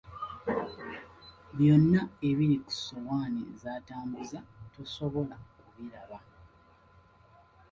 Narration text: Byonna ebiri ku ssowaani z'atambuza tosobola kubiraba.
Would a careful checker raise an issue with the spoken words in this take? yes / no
no